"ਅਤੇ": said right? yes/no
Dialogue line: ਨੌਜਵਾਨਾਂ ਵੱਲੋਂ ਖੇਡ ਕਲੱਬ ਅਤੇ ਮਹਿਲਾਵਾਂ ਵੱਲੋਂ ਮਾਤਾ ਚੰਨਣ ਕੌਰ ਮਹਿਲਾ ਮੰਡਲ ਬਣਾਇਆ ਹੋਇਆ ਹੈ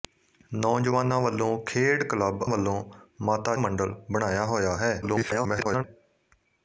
no